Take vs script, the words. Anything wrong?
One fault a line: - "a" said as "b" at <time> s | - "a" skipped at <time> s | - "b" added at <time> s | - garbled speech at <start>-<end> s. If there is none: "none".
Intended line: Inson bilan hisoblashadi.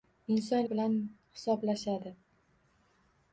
none